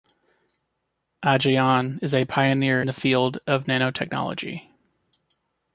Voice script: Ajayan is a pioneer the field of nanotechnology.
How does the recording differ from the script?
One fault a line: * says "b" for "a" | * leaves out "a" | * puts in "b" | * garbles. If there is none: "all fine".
all fine